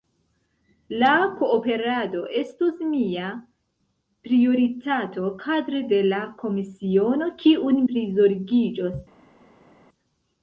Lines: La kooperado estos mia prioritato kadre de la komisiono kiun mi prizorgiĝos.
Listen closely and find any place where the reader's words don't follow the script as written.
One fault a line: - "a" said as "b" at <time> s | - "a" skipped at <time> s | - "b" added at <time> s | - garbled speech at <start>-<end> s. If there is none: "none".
- "mi" skipped at 7.9 s